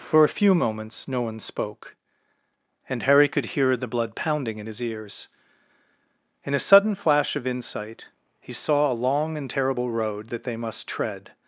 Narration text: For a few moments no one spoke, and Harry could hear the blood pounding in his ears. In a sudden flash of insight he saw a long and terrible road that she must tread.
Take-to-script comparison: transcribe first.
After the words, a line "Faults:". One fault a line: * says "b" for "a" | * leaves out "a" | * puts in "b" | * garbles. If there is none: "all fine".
For a few moments no one spoke, and Harry could hear the blood pounding in his ears. In a sudden flash of insight he saw a long and terrible road that they must tread.
Faults:
* says "they" for "she"